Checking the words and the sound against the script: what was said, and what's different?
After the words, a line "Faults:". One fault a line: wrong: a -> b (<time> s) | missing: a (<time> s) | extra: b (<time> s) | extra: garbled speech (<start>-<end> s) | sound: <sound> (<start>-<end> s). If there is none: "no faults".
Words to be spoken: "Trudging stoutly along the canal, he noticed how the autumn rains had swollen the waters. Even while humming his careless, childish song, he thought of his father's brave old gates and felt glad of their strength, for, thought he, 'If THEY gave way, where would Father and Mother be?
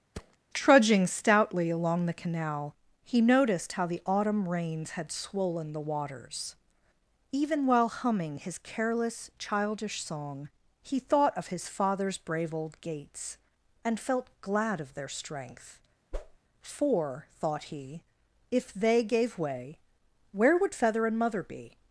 "Trudging stoutly along the canal, he noticed how the autumn rains had swollen the waters. Even while humming his careless, childish song, he thought of his father's brave old gates and felt glad of their strength, for, thought he, 'If THEY gave way, where would Feather and Mother be?
Faults:
sound: thud (0.1-0.4 s)
sound: whoosh (16.1-16.4 s)
wrong: Father -> Feather (20.7 s)